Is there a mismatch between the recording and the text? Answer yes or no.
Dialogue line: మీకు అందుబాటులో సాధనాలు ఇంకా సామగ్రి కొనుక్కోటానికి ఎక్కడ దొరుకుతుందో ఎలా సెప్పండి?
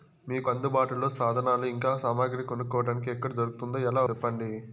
no